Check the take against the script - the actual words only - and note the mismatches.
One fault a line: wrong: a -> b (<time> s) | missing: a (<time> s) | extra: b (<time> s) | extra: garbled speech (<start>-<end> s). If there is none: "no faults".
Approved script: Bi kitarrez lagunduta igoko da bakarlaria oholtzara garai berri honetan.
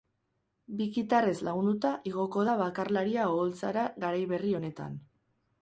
no faults